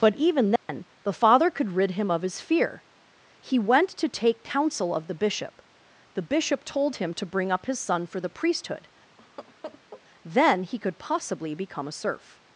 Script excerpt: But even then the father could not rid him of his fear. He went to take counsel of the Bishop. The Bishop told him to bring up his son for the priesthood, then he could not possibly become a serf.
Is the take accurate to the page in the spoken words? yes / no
no